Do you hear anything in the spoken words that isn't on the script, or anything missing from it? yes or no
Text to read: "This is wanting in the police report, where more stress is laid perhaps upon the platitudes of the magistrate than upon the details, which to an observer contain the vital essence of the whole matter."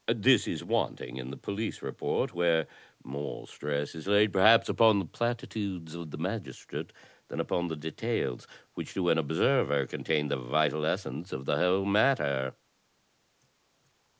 no